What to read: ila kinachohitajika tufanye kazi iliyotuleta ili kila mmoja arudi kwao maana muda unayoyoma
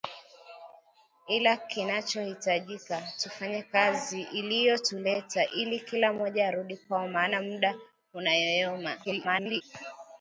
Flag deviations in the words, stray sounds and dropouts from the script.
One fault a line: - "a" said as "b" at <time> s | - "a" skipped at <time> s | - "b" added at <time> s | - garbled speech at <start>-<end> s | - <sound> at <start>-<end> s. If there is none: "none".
- garbled speech at 9.0-9.6 s